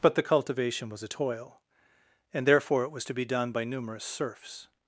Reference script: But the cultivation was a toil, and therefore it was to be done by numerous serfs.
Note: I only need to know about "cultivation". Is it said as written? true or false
true